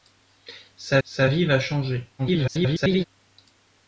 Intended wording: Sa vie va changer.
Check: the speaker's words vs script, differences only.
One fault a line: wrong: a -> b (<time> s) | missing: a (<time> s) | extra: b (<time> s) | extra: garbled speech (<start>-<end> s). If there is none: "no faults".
extra: sa (1.0 s)
extra: garbled speech (2.2-3.0 s)